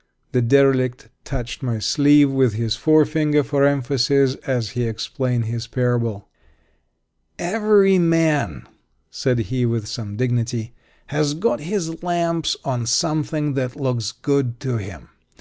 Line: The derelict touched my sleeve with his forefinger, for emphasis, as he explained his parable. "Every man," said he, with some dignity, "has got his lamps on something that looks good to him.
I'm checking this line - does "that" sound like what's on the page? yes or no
yes